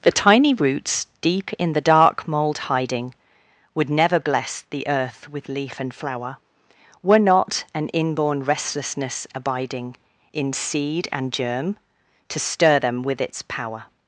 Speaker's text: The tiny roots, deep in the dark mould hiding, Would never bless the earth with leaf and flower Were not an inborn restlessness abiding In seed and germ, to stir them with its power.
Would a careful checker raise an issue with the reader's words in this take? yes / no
no